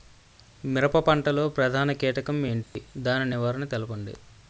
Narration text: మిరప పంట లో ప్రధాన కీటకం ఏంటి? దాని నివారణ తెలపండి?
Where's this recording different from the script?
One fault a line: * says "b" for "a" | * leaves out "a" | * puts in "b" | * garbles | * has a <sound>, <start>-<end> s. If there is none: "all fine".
* has a dropout, 2.6-2.8 s